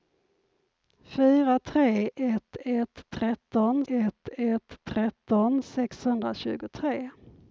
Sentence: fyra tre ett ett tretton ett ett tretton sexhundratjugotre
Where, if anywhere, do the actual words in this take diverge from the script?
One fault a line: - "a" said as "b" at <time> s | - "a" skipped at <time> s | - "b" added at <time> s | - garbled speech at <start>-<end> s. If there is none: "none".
none